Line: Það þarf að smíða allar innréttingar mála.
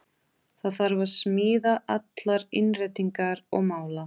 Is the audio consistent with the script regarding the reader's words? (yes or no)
no